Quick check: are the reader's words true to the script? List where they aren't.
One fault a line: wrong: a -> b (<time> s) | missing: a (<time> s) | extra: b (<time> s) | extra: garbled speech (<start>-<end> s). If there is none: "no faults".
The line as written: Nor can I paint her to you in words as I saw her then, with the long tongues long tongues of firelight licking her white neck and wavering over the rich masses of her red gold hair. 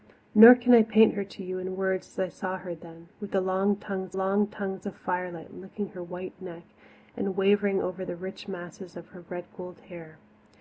no faults